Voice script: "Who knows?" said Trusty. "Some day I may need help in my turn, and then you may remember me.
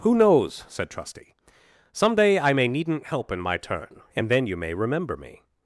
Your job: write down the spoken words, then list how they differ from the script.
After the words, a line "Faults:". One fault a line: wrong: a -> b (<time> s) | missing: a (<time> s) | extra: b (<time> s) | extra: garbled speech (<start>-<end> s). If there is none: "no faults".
"Who knows?" said Trusty. "Some day I may needn't help in my turn, and then you may remember me.
Faults:
wrong: need -> needn't (2.7 s)